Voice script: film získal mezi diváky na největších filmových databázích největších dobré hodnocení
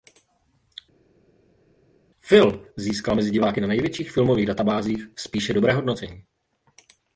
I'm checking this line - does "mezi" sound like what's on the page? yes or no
yes